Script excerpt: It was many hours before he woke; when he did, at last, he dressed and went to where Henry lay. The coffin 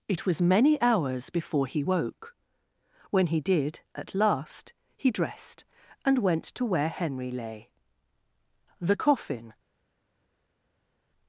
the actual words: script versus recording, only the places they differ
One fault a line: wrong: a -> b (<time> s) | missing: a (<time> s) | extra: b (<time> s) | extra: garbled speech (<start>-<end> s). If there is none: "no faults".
no faults